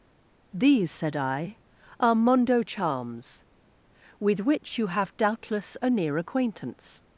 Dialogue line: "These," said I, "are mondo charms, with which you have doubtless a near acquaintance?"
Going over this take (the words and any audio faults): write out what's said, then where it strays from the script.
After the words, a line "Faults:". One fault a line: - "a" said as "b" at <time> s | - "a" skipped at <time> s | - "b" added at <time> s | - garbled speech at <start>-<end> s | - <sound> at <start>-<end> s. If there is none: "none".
"These," said I, "are mondo charms, with which you have doubtless a near acquaintance?"
Faults:
none